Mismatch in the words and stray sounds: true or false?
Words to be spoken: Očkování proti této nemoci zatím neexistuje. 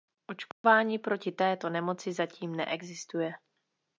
true